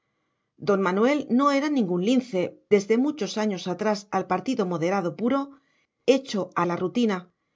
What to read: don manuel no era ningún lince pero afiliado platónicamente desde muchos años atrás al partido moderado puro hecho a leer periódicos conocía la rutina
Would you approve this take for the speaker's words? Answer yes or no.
no